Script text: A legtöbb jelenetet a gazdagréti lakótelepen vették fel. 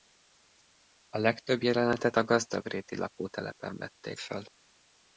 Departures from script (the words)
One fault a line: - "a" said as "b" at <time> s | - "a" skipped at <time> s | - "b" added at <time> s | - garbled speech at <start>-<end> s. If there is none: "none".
none